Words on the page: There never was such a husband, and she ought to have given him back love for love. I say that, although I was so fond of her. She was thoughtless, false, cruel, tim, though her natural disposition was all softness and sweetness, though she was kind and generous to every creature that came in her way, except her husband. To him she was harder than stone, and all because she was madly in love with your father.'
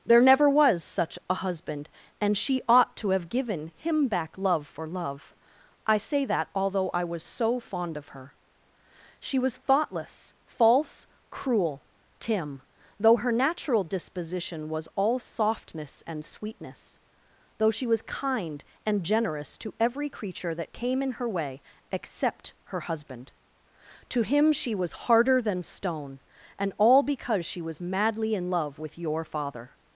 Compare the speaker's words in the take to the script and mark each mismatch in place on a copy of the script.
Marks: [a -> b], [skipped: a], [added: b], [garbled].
There never was such a husband, and she ought to have given him back love for love. I say that, although I was so fond of her. She was thoughtless, false, cruel, tim, though her natural disposition was all softness and sweetness, though she was kind and generous to every creature that came in her way, except her husband. To him she was harder than stone, and all because she was madly in love with your father.'